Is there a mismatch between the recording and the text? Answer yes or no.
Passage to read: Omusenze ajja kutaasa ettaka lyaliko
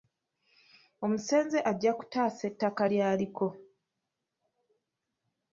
no